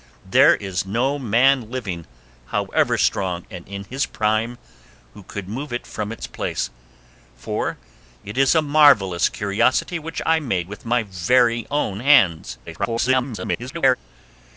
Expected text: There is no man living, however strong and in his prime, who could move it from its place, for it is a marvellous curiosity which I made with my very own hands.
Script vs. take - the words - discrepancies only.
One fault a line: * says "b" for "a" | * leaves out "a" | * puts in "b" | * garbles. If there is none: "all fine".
* garbles